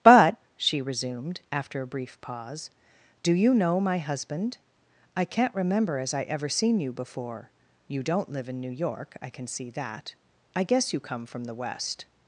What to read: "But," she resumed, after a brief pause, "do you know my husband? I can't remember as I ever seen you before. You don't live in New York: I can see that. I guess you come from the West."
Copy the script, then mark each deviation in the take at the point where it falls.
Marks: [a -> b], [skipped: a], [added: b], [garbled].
"But," she resumed, after a brief pause, "do you know my husband? I can't remember as I ever seen you before. You don't live in New York: I can see that. I guess you come from the West."